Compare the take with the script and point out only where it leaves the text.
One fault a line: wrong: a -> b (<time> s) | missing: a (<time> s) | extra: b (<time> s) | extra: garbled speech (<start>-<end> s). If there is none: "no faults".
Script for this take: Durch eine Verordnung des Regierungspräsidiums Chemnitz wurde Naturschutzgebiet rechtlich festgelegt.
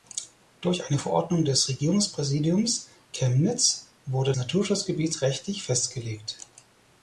no faults